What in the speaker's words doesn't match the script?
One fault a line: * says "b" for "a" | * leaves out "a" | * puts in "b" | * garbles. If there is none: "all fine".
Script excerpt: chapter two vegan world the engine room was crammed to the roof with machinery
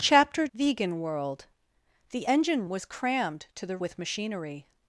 * leaves out "two"
* leaves out "room"
* leaves out "roof"